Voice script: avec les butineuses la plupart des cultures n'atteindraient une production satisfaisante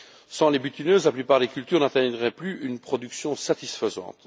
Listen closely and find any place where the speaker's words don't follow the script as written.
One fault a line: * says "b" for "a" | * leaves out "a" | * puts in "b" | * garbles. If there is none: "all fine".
* says "sans" for "avec"
* puts in "plus"